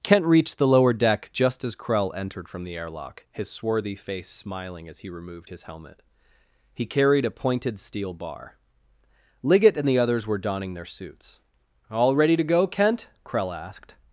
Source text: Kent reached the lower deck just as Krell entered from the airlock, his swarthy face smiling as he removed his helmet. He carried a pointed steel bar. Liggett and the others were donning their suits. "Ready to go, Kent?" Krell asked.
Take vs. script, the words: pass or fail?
fail